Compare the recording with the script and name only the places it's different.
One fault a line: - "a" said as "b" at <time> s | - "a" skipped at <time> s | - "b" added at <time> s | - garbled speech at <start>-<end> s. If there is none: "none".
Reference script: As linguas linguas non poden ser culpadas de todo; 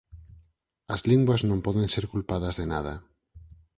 - "linguas" skipped at 1.4 s
- "todo" said as "nada" at 2.7 s